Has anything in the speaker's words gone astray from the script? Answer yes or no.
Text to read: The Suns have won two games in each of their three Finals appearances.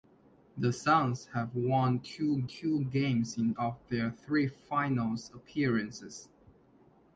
yes